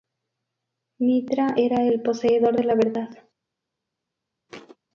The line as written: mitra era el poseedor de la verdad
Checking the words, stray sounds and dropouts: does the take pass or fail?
fail